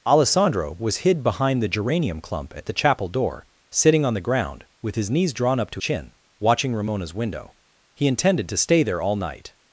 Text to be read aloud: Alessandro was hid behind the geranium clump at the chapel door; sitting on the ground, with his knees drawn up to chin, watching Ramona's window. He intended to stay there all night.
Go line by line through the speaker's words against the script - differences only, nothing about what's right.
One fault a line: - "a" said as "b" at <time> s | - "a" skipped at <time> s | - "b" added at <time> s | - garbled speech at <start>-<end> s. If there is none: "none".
none